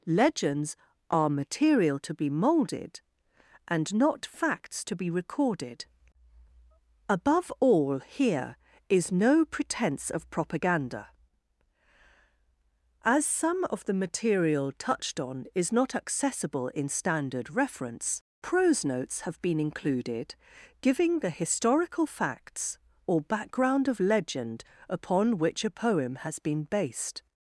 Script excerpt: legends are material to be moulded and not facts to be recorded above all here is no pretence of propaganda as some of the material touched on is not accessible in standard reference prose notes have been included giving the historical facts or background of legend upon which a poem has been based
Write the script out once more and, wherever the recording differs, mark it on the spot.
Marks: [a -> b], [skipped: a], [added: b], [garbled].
legends are material to be moulded and not facts to be recorded above all here is no pretence of propaganda as some of the material touched on is not accessible in standard reference prose notes have been included giving the historical facts or background of legend upon which a poem has been based